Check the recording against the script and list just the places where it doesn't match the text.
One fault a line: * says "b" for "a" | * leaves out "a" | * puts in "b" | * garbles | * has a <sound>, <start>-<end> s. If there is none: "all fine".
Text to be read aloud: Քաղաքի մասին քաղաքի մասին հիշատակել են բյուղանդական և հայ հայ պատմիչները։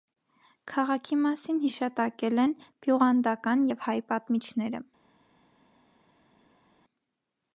* leaves out "քաղաքի մասին"
* leaves out "հայ"